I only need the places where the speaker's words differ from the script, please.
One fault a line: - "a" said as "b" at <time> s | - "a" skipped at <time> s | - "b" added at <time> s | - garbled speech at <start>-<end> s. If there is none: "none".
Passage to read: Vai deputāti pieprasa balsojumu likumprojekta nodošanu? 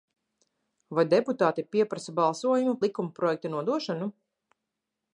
none